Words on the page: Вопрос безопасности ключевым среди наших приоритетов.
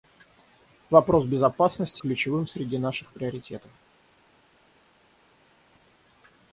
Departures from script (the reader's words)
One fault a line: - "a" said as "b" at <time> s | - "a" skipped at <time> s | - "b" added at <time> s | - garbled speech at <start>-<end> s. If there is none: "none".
none